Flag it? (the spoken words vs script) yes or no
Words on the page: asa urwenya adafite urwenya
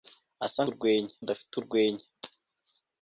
no